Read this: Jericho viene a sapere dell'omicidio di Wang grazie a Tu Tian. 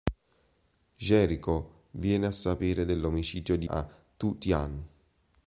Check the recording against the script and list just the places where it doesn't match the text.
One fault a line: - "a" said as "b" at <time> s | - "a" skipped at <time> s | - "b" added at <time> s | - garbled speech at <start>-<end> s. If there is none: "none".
- "Wang grazie" skipped at 3.7 s